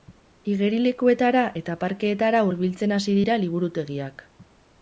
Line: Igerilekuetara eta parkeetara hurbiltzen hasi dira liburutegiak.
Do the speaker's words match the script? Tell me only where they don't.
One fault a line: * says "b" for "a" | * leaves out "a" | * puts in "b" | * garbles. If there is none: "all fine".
all fine